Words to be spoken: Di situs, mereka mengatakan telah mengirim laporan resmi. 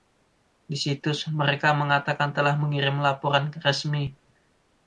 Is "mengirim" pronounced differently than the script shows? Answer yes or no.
no